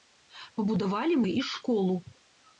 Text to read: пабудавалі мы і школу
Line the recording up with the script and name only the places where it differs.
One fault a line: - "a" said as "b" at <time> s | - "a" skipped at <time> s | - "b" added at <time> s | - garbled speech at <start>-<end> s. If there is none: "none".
none